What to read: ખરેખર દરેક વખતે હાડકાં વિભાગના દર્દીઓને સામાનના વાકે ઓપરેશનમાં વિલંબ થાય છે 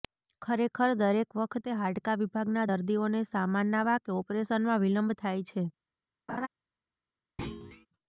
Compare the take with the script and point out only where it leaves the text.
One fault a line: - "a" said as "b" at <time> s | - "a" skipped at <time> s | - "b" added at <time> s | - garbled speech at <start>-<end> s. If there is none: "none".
none